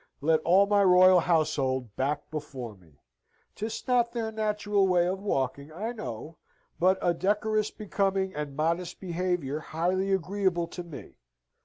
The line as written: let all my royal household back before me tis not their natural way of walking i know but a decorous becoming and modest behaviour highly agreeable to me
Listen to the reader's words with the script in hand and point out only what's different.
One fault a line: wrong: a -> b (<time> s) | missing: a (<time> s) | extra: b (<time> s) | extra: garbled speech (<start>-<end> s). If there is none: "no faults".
no faults